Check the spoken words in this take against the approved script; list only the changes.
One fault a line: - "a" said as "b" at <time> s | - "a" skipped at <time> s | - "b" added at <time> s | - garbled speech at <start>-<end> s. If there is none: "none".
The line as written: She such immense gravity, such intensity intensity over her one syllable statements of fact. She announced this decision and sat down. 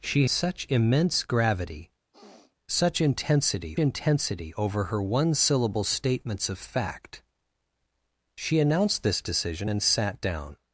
none